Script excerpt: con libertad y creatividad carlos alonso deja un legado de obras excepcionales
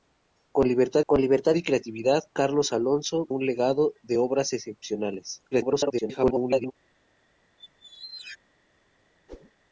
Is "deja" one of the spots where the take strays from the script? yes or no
yes